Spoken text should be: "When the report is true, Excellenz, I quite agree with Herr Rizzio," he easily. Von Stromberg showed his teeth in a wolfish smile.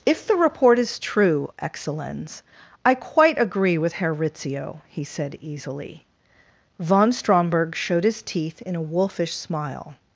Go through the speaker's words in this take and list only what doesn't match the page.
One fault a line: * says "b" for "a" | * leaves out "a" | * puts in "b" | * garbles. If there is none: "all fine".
* says "If" for "When"
* puts in "said"